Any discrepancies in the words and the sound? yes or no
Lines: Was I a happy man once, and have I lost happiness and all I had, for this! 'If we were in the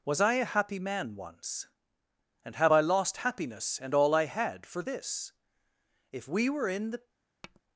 yes